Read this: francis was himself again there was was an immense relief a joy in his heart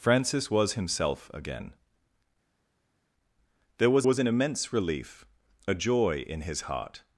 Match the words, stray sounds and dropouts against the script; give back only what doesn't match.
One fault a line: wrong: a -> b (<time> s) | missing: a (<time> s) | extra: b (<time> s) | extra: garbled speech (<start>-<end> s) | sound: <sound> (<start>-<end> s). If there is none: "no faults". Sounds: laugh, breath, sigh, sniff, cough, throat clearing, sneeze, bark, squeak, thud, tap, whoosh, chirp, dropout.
no faults